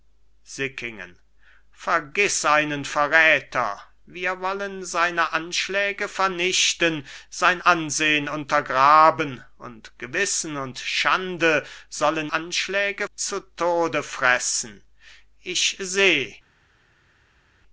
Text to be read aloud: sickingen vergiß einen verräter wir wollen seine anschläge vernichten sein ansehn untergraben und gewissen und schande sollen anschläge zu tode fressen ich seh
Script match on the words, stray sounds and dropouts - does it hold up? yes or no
yes